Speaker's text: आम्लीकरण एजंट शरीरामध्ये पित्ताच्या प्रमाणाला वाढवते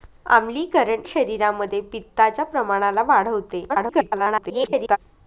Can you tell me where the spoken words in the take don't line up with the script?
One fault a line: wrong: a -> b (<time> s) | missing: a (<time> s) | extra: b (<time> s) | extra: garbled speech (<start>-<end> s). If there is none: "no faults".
missing: एजंट (1.0 s)
extra: garbled speech (3.7-5.0 s)